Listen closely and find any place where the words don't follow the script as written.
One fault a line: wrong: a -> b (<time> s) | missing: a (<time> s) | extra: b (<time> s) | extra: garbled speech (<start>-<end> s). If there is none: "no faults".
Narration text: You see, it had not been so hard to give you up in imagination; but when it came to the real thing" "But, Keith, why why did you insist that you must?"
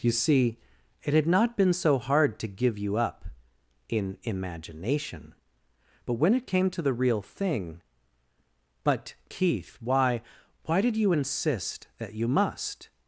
no faults